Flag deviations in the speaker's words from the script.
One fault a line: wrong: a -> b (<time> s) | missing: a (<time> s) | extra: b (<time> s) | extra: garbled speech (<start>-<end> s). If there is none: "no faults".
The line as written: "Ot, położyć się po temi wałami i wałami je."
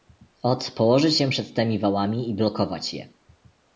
wrong: po -> przed (1.3 s)
wrong: wałami -> blokować (2.3 s)